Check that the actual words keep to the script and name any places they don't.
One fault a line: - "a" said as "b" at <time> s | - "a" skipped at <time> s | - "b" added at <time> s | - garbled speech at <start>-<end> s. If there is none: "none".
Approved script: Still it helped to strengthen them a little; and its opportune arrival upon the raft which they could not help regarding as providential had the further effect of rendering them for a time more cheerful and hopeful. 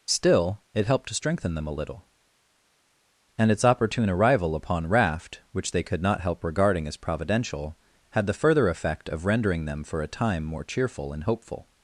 - "the" skipped at 4.9 s